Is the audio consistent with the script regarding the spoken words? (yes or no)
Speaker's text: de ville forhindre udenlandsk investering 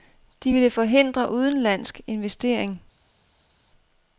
yes